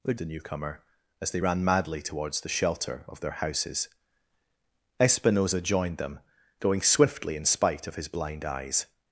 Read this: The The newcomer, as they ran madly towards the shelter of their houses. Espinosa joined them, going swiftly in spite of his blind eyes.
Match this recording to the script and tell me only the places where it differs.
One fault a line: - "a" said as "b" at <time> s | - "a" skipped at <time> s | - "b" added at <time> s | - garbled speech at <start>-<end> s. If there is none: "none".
none